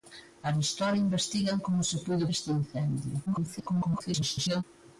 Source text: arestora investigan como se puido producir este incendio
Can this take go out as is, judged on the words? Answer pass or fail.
fail